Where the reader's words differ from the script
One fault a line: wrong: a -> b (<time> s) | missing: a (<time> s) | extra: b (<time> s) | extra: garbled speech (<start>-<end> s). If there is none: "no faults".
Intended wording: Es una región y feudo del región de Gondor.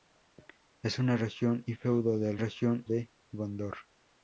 no faults